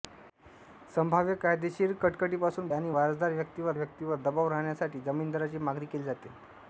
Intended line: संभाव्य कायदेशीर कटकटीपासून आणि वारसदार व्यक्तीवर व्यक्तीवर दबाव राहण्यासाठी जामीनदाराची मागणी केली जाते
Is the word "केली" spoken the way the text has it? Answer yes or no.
yes